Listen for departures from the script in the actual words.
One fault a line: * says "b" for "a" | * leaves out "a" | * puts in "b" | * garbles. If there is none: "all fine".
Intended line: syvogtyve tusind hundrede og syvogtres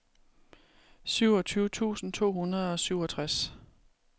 * puts in "to"